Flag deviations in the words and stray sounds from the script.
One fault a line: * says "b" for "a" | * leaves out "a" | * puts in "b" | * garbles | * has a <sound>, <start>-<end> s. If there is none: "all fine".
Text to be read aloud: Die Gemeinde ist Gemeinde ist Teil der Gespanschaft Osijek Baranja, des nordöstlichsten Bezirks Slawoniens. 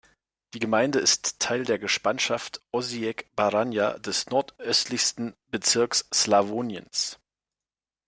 * leaves out "Gemeinde ist"